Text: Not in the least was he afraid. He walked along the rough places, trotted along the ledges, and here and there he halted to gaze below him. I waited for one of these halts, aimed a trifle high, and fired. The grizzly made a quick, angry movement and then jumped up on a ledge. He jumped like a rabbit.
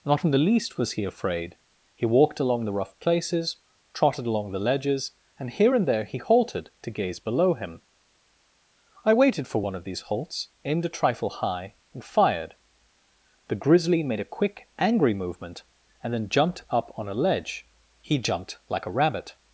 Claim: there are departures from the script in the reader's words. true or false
false